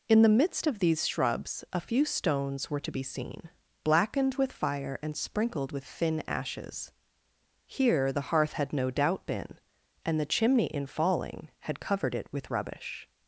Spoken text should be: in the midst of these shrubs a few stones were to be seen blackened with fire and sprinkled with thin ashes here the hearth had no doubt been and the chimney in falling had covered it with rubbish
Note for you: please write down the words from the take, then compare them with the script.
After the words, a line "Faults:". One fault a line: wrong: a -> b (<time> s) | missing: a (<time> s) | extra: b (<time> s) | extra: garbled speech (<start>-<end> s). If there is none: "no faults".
in the midst of these shrubs a few stones were to be seen blackened with fire and sprinkled with thin ashes here the hearth had no doubt been and the chimney in falling had covered it with rubbish
Faults:
no faults